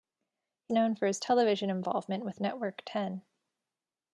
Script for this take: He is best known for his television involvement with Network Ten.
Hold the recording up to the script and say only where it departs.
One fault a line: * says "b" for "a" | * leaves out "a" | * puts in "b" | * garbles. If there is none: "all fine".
* leaves out "is best"